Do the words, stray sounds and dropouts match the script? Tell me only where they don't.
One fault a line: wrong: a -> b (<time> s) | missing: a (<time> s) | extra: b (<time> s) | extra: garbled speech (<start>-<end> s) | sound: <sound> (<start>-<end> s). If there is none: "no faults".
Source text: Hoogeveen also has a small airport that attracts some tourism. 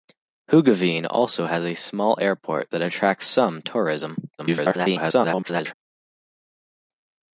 extra: garbled speech (4.4-5.7 s)